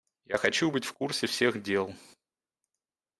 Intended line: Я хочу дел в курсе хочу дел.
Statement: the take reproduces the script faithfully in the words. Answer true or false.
false